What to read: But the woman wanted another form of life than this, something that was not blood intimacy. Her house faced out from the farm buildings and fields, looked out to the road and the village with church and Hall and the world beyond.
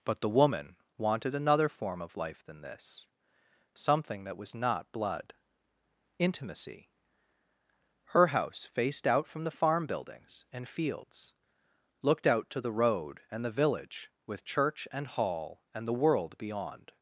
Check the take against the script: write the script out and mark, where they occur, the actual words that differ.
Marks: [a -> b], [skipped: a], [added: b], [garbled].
But the woman wanted another form of life than this, something that was not blood intimacy. Her house faced out from the farm buildings and fields, looked out to the road and the village with church and Hall and the world beyond.